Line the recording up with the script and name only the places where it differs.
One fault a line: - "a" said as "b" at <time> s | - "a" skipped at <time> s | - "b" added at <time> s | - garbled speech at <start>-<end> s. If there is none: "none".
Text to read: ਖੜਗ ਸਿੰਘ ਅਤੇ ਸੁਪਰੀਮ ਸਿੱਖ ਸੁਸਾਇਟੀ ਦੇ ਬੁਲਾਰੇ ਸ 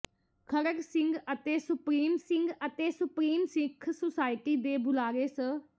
- "ਸਿੰਘ ਅਤੇ ਸੁਪਰੀਮ" added at 2.2 s